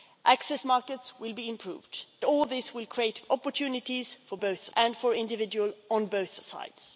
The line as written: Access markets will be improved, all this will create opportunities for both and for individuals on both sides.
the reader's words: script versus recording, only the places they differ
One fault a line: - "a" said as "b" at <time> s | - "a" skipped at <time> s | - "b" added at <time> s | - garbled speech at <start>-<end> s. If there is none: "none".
none